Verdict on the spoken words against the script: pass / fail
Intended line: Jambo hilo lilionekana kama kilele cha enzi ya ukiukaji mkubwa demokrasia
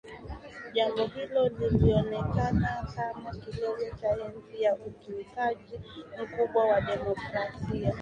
fail